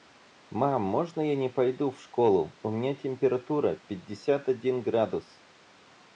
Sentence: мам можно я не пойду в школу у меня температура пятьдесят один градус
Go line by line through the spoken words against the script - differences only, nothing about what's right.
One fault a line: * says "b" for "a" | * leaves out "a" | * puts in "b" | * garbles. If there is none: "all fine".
all fine